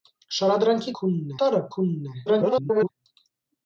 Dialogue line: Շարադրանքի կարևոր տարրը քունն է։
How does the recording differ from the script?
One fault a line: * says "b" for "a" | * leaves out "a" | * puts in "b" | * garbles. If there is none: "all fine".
* says "քունն" for "կարևոր"
* garbles